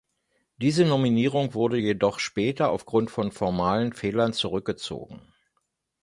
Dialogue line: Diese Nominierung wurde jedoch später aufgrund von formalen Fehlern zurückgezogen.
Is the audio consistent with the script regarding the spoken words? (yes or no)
yes